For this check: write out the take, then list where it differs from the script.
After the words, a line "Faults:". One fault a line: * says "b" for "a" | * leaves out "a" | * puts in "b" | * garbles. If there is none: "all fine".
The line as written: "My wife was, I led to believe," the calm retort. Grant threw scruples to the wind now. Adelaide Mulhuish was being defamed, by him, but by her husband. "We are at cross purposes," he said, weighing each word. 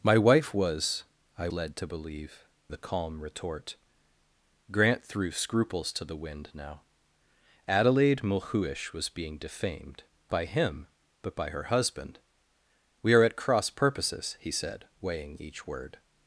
"My wife was, I led to believe," the calm retort. Grant threw scruples to the wind now. Adelaide Mulhuish was being defamed, by him, but by her husband. "We are at cross purposes," he said, weighing each word.
Faults:
all fine